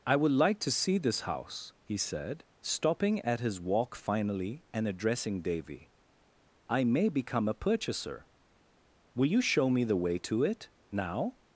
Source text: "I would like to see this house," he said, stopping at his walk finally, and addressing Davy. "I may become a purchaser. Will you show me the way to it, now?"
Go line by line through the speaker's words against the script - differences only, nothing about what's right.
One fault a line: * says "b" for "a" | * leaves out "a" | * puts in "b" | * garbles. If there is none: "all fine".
all fine